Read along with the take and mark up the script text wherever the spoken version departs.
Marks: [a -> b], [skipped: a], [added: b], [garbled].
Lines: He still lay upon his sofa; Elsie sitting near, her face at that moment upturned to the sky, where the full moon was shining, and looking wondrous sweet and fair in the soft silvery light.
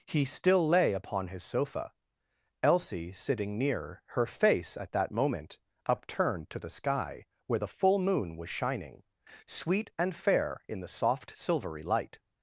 He still lay upon his sofa; Elsie sitting near, her face at that moment upturned to the sky, where the full moon was shining, [skipped: and looking wondrous] sweet and fair in the soft silvery light.